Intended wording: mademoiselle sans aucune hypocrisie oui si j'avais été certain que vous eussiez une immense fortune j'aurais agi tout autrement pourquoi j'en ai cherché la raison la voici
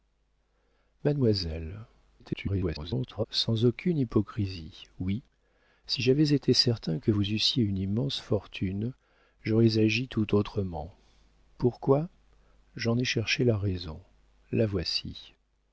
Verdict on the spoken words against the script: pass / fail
fail